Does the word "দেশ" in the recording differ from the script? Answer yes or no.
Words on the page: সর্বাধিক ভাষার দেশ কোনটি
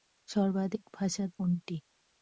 yes